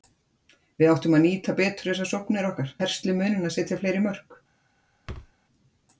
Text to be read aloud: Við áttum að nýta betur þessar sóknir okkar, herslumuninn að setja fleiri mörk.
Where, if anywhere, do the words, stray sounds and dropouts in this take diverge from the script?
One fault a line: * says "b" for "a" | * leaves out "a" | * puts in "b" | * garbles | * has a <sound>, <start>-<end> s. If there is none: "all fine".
* has a thud, 5.1-5.3 s